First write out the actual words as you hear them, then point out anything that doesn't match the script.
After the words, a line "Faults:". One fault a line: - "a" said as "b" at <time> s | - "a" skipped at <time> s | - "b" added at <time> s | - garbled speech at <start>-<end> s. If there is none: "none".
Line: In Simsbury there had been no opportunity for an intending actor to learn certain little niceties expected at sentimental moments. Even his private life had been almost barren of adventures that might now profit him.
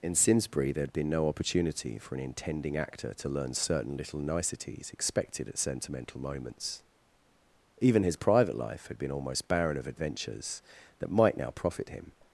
In Simsbury there had been no opportunity for an intending actor to learn certain little niceties expected at sentimental moments. Even his private life had been almost barren of adventures that might now profit him.
Faults:
none